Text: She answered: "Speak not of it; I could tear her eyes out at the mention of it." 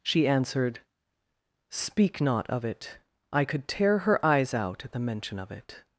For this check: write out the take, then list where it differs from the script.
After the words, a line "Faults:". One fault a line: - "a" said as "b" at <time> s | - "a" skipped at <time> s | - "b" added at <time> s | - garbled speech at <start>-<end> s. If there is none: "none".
She answered: "Speak not of it; I could tear her eyes out at the mention of it."
Faults:
none